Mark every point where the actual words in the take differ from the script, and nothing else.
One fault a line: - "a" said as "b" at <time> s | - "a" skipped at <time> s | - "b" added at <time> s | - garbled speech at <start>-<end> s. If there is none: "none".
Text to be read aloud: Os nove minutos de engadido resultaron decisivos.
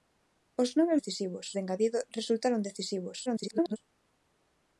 - "minutos" said as "decisivos" at 1.0 s
- garbled speech at 3.3-3.8 s